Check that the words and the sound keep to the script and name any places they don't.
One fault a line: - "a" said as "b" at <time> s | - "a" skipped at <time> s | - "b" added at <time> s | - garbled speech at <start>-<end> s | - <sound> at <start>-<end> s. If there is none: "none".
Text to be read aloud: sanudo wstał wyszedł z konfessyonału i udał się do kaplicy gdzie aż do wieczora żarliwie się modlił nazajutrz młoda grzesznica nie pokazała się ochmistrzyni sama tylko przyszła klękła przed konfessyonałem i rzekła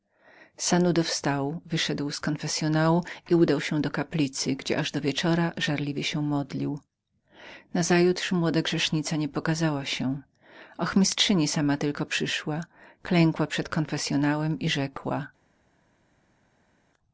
none